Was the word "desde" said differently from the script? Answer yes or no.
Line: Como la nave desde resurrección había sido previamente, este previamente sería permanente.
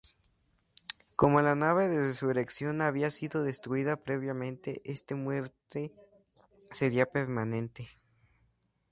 yes